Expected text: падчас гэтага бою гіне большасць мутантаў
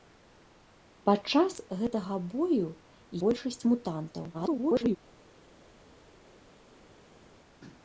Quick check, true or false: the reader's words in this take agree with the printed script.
false